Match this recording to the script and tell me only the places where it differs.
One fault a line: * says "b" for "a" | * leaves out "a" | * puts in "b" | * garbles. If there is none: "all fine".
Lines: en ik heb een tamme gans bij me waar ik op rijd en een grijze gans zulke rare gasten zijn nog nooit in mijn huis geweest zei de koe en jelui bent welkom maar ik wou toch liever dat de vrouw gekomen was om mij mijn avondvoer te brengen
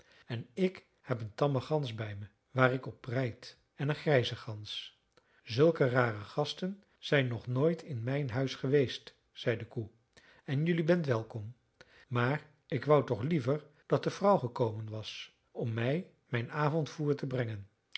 all fine